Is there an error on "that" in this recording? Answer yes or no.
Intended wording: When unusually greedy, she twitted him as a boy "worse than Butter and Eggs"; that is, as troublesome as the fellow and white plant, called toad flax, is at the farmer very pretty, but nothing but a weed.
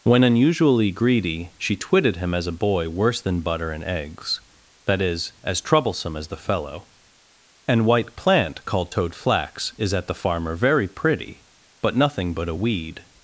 no